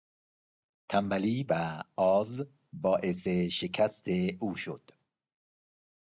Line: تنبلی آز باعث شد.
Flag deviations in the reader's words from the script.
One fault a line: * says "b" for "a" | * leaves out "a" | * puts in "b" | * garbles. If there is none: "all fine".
* puts in "و"
* puts in "شکست او"